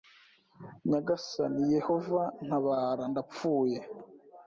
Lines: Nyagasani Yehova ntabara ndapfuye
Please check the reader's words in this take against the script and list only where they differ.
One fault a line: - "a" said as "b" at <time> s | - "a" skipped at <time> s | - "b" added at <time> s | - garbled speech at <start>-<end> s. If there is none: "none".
none